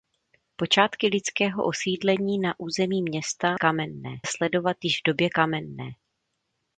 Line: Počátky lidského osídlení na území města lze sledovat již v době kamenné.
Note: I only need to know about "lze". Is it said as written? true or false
false